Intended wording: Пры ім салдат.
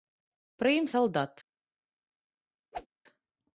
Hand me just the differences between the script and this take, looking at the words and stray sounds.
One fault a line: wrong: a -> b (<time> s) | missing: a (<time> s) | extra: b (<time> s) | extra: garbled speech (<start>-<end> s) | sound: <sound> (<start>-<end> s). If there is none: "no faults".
sound: whoosh (2.7-2.9 s)